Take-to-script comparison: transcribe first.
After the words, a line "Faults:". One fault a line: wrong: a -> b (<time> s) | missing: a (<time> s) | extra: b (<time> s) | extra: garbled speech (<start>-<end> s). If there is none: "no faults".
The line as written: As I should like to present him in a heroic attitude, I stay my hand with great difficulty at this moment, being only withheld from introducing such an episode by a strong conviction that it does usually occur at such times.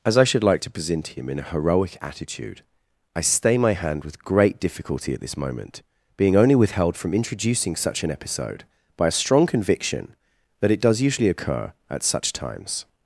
As I should like to present him in a heroic attitude, I stay my hand with great difficulty at this moment, being only withheld from introducing such an episode by a strong conviction that it does usually occur at such times.
Faults:
no faults